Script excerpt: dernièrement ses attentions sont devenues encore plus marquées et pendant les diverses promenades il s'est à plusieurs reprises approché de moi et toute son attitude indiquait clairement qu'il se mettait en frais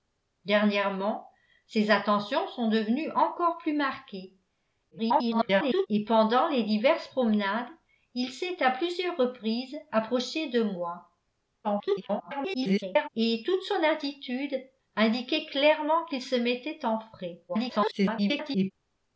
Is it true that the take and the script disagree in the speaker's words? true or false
true